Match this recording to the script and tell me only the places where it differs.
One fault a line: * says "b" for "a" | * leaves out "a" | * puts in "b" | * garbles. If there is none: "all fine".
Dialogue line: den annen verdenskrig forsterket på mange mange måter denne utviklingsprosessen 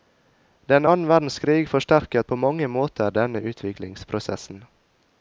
* leaves out "mange"